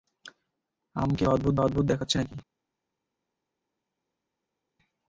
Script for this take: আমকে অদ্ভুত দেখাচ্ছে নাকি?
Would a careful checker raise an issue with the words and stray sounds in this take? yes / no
yes